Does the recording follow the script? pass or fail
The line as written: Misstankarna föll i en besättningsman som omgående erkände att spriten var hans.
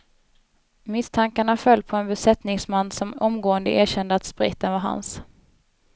fail